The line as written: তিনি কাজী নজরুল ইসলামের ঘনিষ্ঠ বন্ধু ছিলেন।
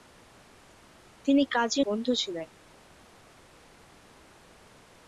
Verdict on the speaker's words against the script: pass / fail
fail